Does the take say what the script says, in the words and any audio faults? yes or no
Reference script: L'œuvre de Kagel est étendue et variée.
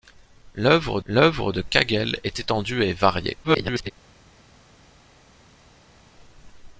no